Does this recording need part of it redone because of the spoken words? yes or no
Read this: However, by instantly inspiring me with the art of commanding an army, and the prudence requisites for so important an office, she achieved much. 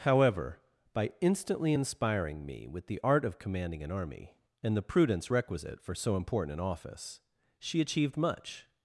yes